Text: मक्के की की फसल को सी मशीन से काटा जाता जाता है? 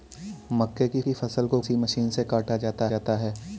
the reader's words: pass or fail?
pass